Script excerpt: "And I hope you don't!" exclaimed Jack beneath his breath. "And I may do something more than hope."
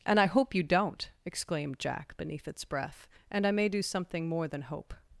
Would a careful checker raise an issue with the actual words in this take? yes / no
yes